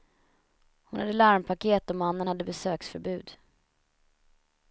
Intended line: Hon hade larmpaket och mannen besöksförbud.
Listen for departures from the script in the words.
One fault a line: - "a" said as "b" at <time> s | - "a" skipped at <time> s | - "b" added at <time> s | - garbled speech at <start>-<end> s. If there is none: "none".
- "hade" added at 2.3 s